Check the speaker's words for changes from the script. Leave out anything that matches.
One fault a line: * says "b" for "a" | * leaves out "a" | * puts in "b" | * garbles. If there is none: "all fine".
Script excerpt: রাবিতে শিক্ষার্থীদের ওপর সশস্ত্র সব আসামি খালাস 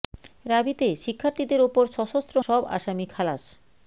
all fine